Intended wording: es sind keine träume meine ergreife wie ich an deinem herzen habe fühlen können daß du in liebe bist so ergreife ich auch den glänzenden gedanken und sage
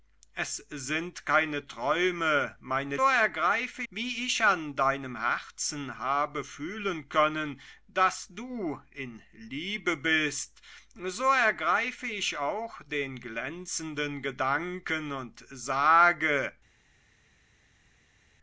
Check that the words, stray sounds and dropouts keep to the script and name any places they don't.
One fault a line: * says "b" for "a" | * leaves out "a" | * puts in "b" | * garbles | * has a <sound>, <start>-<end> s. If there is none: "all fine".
all fine